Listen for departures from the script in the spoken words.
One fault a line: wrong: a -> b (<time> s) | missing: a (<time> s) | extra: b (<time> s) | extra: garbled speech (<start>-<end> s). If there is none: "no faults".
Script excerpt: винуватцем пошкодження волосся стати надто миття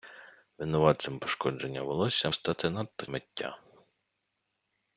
no faults